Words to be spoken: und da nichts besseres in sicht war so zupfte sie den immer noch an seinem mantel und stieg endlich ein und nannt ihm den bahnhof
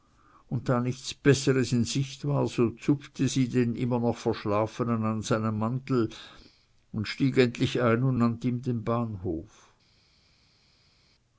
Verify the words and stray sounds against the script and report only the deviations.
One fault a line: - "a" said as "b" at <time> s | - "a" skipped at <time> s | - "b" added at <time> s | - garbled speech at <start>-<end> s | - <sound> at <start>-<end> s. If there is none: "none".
- "verschlafenen" added at 4.1 s